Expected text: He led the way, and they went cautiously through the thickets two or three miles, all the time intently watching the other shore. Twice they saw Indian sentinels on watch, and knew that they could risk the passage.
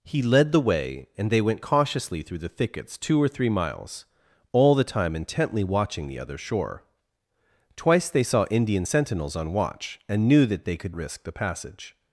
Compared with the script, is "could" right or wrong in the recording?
right